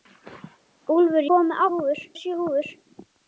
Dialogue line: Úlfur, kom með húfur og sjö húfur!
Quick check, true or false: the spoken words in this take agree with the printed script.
true